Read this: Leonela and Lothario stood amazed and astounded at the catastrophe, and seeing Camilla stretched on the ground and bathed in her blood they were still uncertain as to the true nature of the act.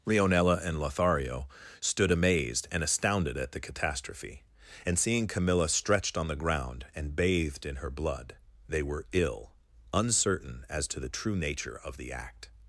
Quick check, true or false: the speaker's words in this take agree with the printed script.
false